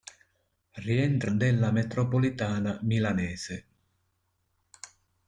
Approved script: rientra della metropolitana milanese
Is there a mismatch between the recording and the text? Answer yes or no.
no